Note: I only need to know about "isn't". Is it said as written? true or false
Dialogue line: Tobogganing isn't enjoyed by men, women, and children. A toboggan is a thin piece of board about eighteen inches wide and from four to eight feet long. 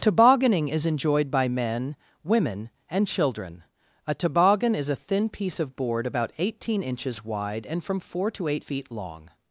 false